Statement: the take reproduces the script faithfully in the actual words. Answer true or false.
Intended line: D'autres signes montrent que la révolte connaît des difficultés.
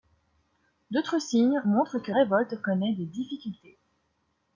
false